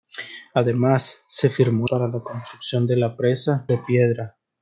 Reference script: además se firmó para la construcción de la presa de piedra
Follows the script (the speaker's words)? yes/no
yes